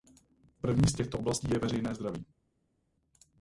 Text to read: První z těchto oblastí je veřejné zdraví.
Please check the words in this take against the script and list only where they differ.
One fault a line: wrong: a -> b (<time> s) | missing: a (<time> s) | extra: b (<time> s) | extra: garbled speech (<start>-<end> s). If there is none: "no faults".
no faults